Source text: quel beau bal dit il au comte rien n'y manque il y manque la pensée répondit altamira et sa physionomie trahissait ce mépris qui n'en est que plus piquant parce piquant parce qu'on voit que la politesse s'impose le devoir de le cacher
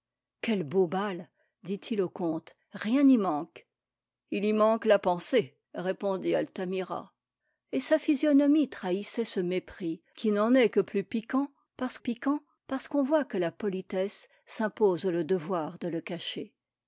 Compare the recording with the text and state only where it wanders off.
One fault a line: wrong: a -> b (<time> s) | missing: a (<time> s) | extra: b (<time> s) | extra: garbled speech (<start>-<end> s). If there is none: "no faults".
no faults